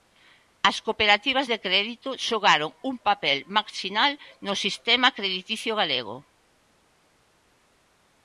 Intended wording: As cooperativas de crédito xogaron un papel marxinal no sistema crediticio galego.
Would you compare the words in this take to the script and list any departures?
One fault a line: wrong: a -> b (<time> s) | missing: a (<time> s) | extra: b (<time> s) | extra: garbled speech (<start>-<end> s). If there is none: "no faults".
no faults